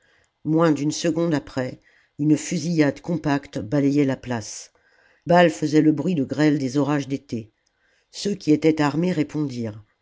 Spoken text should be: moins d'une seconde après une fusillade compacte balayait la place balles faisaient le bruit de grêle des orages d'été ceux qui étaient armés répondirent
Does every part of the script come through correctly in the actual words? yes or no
yes